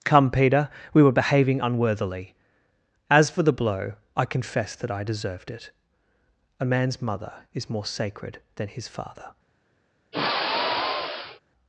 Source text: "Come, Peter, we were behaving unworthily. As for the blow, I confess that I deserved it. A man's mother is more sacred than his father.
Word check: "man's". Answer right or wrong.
right